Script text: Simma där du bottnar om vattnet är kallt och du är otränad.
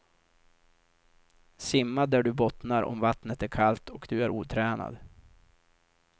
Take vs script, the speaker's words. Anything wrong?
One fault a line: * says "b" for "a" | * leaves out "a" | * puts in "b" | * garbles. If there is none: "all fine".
all fine